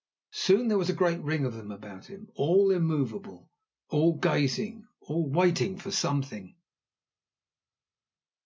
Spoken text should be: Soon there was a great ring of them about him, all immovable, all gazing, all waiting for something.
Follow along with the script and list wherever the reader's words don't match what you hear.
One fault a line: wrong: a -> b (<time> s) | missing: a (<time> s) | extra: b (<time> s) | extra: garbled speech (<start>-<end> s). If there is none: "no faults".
no faults